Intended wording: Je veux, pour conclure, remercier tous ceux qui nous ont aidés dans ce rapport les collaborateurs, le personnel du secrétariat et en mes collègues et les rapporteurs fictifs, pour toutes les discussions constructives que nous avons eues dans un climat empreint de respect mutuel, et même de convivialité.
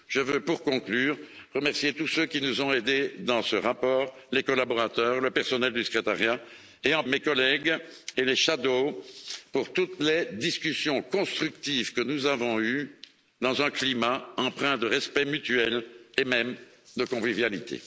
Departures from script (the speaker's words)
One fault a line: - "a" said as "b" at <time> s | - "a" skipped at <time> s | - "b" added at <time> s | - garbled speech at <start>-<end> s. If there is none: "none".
none